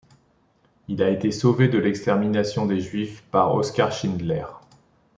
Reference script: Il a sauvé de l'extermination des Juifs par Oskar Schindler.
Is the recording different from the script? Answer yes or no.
yes